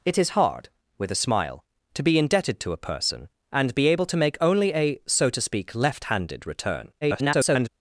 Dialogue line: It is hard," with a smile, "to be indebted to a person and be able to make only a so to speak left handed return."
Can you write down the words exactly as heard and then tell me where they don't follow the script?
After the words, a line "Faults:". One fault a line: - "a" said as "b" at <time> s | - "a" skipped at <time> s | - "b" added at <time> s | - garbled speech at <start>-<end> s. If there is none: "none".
It is hard," with a smile, "to be indebted to a person and be able to make only a so to speak left handed return." [garbled]
Faults:
- garbled speech at 7.0-7.7 s